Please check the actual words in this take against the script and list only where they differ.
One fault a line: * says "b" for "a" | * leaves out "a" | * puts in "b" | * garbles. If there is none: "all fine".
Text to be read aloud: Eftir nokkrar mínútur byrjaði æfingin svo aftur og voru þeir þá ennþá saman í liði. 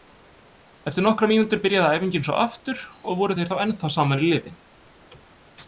all fine